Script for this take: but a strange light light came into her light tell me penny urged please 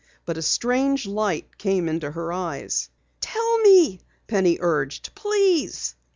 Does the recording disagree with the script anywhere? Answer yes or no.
yes